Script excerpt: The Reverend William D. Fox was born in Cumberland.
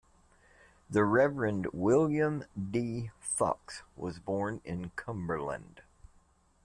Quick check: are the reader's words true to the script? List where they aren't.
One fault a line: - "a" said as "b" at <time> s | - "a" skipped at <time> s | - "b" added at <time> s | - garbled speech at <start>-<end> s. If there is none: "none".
none